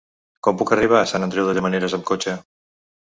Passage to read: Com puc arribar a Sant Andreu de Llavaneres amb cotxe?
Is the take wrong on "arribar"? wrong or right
right